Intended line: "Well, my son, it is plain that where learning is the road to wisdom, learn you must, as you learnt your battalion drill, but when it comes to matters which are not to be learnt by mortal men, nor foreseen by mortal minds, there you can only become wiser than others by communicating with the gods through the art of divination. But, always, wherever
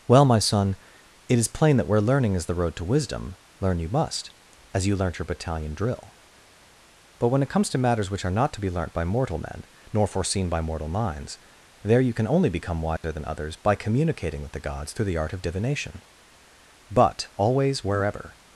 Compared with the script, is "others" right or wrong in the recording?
right